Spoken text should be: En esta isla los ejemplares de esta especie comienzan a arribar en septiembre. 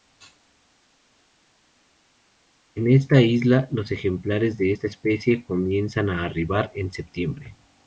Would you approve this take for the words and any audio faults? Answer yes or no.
yes